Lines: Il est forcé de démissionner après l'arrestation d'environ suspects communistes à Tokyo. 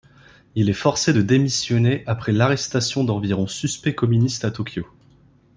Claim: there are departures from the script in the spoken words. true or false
false